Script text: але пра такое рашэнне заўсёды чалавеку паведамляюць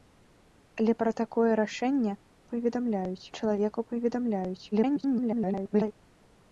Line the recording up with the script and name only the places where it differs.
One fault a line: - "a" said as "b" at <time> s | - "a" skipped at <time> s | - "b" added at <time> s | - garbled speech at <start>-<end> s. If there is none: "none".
- "заўсёды" said as "паведамляюць" at 2.6 s
- garbled speech at 4.7-5.9 s